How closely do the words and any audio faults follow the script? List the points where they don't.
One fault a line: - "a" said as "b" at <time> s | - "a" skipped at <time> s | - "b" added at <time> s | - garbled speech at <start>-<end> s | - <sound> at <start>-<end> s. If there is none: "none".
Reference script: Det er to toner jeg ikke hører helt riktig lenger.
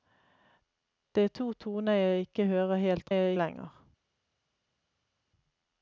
- "riktig" said as "jeg" at 3.1 s